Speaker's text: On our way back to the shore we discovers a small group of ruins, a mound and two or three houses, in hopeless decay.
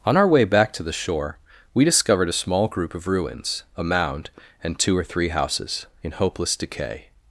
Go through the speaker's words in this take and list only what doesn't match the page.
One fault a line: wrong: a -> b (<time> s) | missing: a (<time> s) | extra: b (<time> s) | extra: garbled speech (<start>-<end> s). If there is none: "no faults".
wrong: discovers -> discovered (1.9 s)